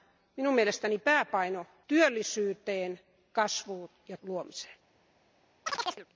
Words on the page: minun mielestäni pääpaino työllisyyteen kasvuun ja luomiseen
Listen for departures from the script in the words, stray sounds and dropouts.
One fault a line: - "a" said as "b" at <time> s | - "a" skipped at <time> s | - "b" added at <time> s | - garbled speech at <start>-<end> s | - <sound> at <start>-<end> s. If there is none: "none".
- chirp at 5.7-6.1 s